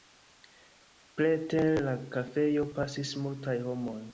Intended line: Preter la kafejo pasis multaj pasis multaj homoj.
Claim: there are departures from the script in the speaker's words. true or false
true